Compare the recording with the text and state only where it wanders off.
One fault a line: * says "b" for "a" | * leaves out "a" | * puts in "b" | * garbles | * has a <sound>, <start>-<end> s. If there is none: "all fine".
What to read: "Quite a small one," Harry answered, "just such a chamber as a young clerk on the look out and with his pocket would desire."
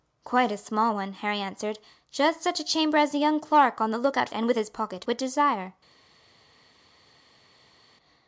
all fine